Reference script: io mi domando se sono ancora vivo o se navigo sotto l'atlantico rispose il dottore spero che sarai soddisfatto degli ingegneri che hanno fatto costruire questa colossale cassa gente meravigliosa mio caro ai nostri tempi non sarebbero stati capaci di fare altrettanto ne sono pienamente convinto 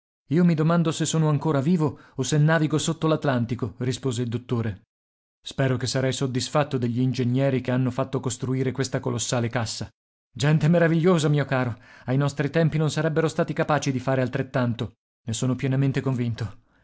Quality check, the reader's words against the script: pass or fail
pass